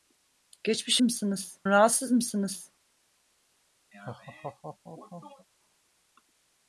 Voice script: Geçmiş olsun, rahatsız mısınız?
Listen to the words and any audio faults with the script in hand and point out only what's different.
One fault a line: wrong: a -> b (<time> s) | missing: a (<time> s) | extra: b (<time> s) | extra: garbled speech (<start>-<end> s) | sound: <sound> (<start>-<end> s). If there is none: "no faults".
wrong: olsun -> mısınız (1.0 s)
sound: laugh (3.9-5.5 s)